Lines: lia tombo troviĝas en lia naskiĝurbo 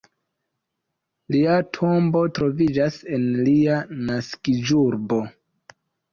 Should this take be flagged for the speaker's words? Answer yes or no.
no